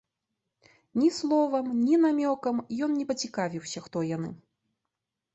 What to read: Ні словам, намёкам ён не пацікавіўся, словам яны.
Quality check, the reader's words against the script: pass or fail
fail